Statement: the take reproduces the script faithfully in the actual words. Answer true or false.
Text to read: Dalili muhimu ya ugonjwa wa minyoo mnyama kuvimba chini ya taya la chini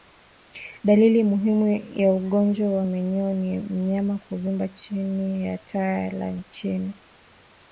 false